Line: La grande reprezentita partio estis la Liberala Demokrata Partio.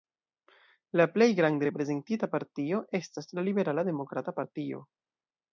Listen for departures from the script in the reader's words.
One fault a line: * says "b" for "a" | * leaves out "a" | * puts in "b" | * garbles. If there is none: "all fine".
* puts in "plej"
* says "estas" for "estis"